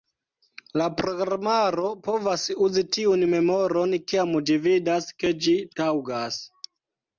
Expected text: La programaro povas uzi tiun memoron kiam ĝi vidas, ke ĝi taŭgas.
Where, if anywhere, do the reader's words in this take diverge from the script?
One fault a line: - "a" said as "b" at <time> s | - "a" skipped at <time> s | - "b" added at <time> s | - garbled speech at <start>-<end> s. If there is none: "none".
none